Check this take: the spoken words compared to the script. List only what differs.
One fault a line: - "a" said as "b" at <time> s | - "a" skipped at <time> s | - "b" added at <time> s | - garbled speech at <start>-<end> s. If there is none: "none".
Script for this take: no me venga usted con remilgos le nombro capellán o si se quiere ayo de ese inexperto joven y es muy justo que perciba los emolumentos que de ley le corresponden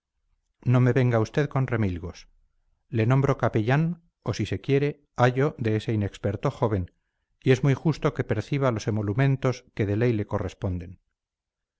none